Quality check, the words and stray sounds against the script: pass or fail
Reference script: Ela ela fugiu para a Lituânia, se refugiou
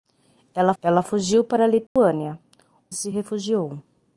fail